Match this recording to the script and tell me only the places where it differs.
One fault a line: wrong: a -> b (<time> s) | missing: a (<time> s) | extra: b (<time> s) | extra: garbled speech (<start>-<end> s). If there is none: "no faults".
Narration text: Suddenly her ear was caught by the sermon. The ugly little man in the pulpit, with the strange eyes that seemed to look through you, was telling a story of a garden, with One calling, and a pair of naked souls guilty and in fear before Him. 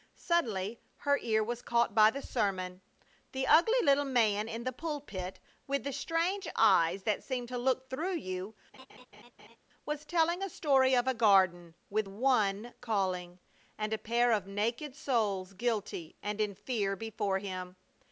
no faults